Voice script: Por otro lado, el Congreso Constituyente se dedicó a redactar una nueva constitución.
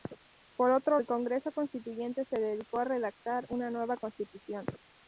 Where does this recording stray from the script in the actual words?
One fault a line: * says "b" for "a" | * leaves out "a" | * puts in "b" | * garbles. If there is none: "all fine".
* leaves out "lado"